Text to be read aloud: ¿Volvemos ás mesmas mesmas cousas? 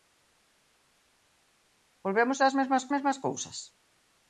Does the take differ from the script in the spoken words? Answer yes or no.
no